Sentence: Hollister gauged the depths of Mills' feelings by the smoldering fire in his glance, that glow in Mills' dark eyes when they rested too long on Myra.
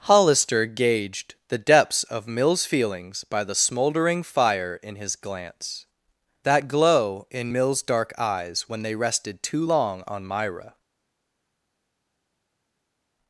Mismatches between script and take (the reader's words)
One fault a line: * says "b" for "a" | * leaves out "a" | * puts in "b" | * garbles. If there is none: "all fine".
all fine